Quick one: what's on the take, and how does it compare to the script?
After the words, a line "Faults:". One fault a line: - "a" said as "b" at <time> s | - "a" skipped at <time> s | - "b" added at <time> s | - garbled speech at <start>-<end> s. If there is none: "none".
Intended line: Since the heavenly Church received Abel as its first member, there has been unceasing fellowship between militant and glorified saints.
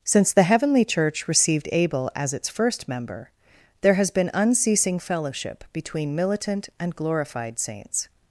Since the heavenly Church received Abel as its first member, there has been unceasing fellowship between militant and glorified saints.
Faults:
none